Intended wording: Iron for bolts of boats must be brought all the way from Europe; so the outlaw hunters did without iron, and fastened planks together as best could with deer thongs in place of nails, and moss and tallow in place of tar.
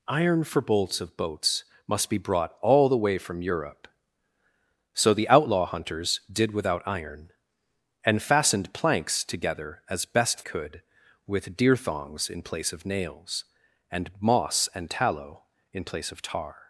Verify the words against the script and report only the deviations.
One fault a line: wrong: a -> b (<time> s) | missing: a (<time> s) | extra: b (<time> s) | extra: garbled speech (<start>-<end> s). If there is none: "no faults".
no faults